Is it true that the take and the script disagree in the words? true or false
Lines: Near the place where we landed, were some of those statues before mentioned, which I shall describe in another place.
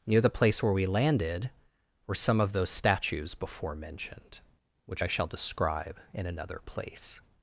false